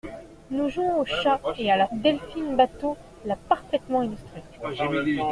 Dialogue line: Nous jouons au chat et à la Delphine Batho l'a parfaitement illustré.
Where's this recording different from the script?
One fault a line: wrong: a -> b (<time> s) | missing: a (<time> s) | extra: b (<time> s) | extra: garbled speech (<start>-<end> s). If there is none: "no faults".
no faults